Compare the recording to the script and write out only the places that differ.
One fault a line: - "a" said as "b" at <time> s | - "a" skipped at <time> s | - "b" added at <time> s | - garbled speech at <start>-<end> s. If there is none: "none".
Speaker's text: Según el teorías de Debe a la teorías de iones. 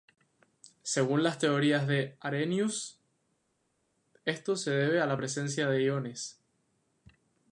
- "el" said as "las" at 1.2 s
- "Arrhenius esto se" added at 2.2 s
- "teorías" said as "presencia" at 5.2 s